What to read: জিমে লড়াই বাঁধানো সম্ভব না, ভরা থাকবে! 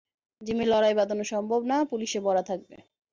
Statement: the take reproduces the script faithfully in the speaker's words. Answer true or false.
false